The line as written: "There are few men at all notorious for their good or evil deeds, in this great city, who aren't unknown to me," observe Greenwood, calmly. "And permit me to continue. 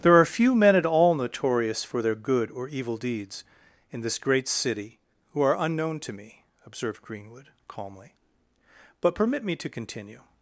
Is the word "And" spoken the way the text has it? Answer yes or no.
no